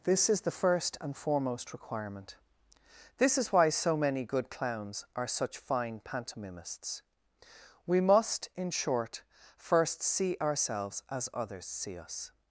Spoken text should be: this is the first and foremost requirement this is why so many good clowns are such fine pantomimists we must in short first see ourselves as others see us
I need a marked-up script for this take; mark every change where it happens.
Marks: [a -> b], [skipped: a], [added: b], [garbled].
this is the first and foremost requirement this is why so many good clowns are such fine pantomimists we must in short first see ourselves as others see us